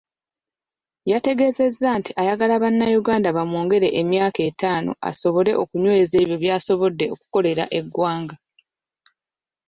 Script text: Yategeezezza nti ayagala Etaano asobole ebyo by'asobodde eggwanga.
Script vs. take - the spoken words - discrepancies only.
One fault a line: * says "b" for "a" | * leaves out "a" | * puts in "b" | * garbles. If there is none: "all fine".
* puts in "Bannayuganda bamwongere emyaka"
* puts in "okunyweza"
* puts in "okukolera"